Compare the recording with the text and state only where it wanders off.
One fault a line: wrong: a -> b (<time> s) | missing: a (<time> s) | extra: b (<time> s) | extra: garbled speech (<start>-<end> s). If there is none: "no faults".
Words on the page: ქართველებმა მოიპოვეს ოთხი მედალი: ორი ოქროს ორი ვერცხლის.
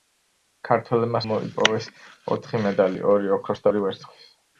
no faults